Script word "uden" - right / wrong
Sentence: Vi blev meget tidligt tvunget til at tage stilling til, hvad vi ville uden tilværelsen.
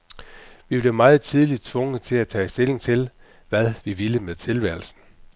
wrong